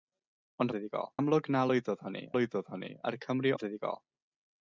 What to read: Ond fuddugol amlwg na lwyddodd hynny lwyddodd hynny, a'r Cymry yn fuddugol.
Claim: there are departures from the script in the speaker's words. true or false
false